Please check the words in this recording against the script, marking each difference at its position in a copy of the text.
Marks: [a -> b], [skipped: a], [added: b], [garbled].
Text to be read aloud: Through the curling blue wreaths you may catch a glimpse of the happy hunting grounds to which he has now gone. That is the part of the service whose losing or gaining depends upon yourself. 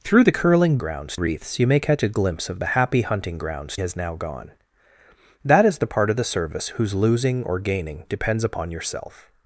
Through the curling [blue -> grounds] wreaths you may catch a glimpse of the happy hunting grounds [skipped: to which he] has now gone. That is the part of the service whose losing or gaining depends upon yourself.